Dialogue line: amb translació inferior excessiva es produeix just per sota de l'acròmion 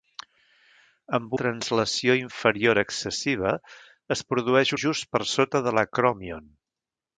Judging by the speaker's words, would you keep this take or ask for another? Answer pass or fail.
pass